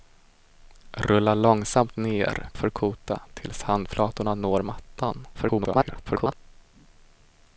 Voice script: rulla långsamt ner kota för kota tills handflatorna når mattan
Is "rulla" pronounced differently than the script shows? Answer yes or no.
no